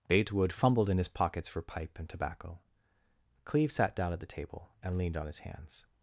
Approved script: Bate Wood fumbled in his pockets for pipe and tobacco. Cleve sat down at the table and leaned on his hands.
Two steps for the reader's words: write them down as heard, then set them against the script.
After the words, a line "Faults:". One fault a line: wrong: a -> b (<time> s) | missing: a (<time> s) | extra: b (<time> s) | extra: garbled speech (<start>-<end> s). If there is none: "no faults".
Bate Wood fumbled in his pockets for pipe and tobacco. Cleve sat down at the table and leaned on his hands.
Faults:
no faults